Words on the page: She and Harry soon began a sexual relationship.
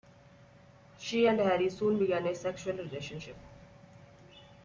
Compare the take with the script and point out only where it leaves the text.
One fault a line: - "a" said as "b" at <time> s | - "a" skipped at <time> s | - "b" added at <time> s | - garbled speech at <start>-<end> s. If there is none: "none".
none